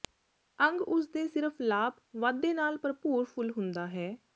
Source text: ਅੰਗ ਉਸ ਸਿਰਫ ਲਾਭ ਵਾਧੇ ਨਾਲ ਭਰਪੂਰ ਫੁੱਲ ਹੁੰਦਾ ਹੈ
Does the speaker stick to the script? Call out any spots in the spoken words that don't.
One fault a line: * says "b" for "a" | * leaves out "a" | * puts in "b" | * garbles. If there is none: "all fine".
* puts in "ਦੇ"